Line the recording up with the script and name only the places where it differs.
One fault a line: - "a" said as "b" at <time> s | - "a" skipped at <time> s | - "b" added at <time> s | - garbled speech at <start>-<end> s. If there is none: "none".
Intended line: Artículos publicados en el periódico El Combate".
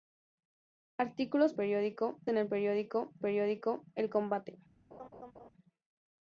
- "publicados" said as "periódico" at 1.5 s
- "periódico" added at 3.2 s